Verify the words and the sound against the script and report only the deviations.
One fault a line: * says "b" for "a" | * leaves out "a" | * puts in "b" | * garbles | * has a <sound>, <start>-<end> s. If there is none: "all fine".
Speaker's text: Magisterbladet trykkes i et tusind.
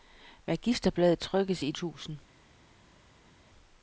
all fine